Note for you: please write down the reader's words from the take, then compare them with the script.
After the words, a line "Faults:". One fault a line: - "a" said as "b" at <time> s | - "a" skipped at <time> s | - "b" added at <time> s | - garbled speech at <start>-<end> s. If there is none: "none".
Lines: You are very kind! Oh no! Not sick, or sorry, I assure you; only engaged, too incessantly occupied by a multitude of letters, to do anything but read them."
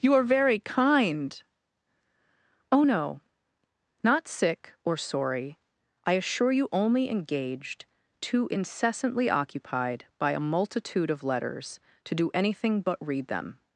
You are very kind! Oh no! Not sick, or sorry, I assure you; only engaged, too incessantly occupied by a multitude of letters, to do anything but read them."
Faults:
none